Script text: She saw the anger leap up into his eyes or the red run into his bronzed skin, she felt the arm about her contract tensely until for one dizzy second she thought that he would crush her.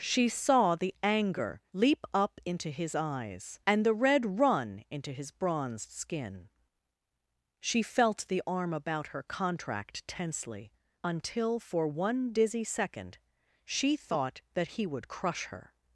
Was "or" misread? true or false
true